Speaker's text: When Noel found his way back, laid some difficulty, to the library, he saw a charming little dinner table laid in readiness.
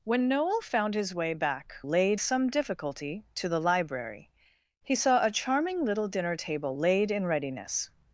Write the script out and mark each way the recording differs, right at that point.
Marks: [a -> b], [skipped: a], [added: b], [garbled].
When Noel found his way back, laid some difficulty, to the library, he saw a charming little dinner table laid in readiness.